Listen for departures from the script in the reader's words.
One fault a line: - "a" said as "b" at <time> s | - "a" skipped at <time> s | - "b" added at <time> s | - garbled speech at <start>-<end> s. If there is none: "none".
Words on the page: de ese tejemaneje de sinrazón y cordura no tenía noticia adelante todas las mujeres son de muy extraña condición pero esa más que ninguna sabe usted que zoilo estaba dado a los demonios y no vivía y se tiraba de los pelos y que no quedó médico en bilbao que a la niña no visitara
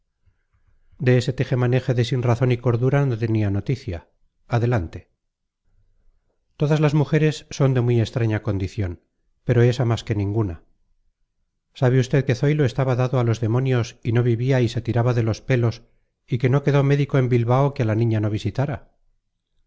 none